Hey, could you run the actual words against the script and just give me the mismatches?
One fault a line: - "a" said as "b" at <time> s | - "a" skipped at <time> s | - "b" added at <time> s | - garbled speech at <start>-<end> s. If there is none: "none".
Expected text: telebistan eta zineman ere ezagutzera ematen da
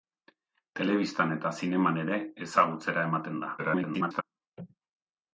- garbled speech at 3.6-4.2 s